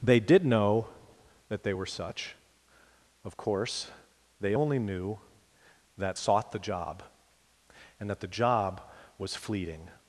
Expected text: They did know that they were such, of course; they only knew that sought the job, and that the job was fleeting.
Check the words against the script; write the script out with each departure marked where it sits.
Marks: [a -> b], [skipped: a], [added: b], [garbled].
They did know that they were such, of course; they only knew that sought the job, and that the job was fleeting.